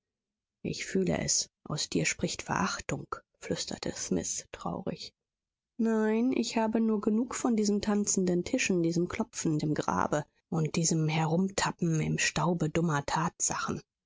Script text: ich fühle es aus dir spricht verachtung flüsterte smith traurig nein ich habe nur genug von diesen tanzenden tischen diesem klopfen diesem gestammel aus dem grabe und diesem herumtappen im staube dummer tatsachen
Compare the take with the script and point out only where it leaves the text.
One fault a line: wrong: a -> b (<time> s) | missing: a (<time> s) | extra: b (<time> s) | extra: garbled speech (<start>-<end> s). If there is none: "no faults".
missing: diesem gestammel aus (9.6 s)